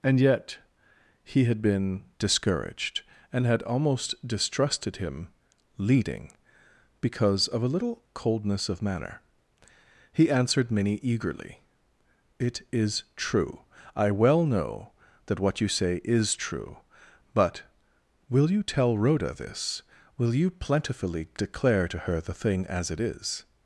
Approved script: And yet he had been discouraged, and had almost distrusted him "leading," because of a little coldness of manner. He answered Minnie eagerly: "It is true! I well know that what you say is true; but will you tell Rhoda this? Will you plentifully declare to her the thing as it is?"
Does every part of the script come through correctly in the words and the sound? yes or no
yes